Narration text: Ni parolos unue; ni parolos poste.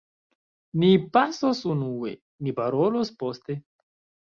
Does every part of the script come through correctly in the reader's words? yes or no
no